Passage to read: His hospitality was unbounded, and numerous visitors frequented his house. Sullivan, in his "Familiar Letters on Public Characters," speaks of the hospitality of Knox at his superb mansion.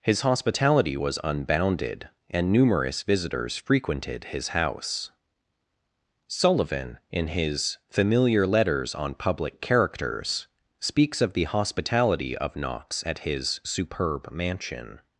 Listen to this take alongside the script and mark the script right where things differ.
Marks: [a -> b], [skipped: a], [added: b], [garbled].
His hospitality was unbounded, and numerous visitors frequented his house. Sullivan, in his "Familiar Letters on Public Characters," speaks of the hospitality of Knox at his superb mansion.